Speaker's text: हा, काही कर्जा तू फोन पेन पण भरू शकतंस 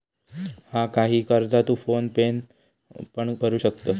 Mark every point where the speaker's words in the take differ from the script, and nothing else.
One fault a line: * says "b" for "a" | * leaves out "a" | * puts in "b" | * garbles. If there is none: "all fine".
all fine